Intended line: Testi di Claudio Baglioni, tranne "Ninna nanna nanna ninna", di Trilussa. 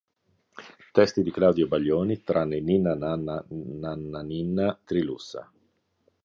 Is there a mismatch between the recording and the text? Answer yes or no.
yes